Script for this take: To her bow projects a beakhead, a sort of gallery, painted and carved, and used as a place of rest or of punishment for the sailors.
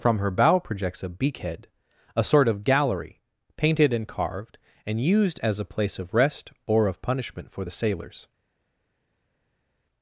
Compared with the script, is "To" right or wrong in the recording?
wrong